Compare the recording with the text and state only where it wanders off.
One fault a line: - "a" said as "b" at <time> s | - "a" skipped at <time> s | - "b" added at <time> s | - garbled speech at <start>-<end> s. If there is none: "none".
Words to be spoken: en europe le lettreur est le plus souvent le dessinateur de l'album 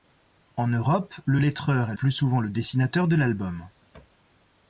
- "le" skipped at 1.9 s